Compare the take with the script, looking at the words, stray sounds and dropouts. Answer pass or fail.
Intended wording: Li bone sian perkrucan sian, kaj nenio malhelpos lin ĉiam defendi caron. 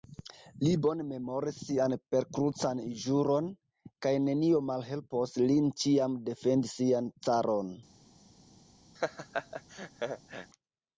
fail